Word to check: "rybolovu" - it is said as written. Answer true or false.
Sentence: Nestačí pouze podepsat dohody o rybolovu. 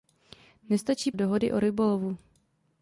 true